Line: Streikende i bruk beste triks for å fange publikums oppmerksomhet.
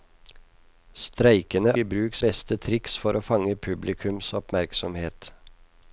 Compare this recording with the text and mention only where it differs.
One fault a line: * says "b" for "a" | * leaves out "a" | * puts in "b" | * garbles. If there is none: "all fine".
all fine